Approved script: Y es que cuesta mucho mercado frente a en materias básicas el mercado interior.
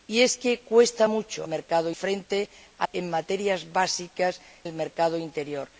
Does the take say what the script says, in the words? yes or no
yes